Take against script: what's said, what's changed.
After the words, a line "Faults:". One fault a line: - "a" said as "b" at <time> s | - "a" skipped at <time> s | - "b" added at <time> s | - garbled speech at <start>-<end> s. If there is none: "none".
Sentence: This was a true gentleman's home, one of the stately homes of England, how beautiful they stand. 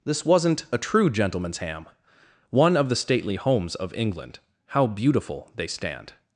This wasn't a true gentleman's ham, one of the stately homes of England, how beautiful they stand.
Faults:
- "was" said as "wasn't" at 0.2 s
- "home" said as "ham" at 1.6 s